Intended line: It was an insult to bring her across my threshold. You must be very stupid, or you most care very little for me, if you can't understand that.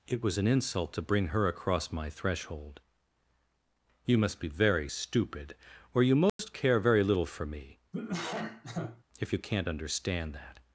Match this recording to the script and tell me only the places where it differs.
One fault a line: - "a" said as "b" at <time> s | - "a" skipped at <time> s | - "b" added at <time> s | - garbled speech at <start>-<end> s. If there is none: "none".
none